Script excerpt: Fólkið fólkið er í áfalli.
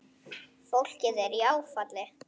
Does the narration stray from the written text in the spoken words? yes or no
yes